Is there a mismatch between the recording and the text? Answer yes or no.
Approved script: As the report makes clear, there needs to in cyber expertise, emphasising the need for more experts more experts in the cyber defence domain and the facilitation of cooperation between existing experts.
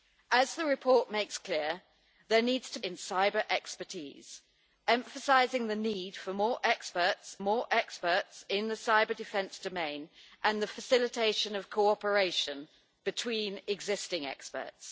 no